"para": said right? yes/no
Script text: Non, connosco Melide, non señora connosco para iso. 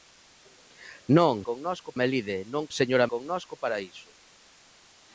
yes